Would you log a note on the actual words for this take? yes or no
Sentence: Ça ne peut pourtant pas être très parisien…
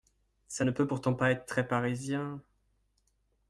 no